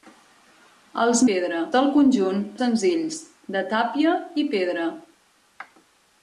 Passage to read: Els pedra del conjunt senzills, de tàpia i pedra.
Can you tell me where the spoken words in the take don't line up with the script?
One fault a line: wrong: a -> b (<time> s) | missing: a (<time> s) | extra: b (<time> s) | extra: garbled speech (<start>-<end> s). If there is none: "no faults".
no faults